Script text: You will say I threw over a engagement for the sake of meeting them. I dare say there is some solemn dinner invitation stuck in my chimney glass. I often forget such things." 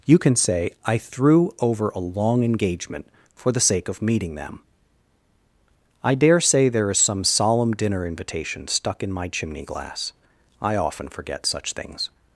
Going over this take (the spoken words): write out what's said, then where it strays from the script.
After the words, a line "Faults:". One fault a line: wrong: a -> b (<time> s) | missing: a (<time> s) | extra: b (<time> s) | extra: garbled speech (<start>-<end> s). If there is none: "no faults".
You can say I threw over a long engagement for the sake of meeting them. I dare say there is some solemn dinner invitation stuck in my chimney glass. I often forget such things."
Faults:
wrong: will -> can (0.2 s)
extra: long (2.0 s)